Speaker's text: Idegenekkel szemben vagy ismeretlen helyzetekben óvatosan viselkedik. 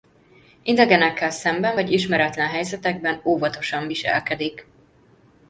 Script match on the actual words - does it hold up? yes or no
yes